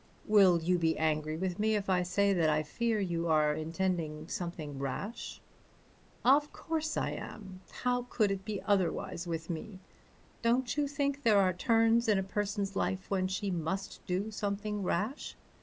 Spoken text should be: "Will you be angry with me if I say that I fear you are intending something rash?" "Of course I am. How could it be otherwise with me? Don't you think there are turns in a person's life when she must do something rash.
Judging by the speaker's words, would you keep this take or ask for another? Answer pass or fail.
pass